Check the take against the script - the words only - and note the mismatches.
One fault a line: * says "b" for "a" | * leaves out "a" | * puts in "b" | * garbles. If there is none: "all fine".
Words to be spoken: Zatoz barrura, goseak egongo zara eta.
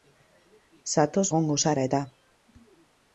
* leaves out "barrura goseak"